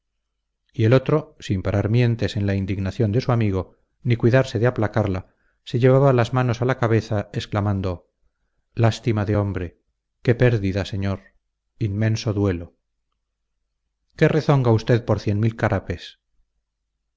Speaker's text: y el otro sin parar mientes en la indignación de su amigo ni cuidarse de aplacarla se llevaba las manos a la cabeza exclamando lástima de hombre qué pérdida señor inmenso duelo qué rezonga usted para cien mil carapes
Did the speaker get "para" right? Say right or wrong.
wrong